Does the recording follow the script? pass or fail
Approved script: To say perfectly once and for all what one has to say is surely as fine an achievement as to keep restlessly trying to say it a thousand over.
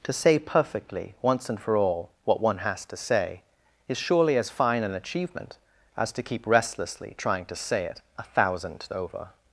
pass